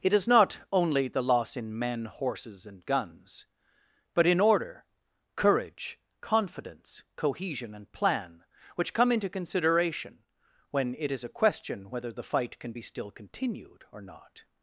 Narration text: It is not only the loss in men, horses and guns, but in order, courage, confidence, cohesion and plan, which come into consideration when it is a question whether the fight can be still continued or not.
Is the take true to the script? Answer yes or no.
yes